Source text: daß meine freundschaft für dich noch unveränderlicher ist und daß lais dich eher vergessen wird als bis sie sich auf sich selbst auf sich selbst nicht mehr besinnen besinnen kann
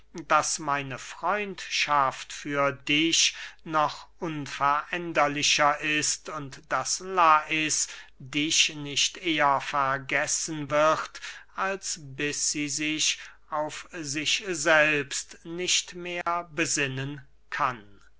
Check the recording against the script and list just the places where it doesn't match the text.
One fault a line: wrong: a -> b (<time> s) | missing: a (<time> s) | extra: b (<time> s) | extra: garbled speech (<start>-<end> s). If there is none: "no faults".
extra: nicht (8.7 s)
missing: auf sich selbst (15.4 s)
missing: besinnen (17.2 s)